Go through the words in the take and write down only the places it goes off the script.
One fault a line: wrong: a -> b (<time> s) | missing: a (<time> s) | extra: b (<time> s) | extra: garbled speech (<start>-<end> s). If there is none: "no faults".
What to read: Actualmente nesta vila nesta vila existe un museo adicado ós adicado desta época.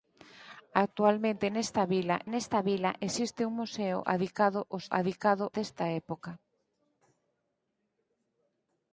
no faults